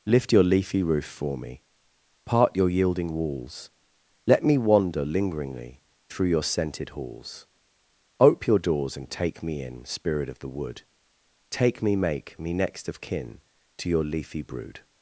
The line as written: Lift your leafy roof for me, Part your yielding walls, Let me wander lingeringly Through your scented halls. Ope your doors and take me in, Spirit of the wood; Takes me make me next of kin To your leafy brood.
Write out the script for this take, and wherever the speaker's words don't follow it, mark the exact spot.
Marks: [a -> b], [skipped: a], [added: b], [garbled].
Lift your leafy roof for me, Part your yielding walls, Let me wander lingeringly Through your scented halls. Ope your doors and take me in, Spirit of the wood; [Takes -> Take] me make me next of kin To your leafy brood.